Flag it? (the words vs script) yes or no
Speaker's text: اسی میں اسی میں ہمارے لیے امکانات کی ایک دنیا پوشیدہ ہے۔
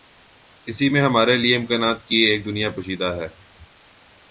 yes